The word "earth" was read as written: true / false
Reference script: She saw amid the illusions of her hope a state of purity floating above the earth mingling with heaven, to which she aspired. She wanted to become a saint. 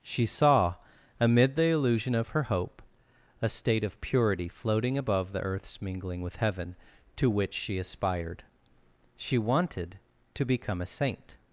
false